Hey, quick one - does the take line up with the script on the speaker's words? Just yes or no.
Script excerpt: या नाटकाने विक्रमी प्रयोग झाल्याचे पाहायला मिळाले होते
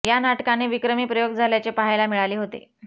yes